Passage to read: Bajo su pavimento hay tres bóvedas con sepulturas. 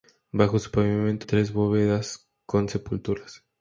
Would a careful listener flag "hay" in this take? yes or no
yes